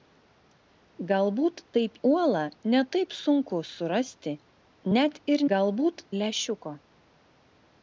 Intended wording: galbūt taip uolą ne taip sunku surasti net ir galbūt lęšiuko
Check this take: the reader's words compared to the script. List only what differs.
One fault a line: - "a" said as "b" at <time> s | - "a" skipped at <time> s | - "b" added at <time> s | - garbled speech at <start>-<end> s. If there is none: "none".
none